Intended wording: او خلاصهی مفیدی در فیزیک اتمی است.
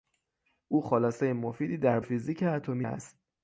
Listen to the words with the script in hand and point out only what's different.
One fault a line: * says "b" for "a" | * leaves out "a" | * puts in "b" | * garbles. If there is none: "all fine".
all fine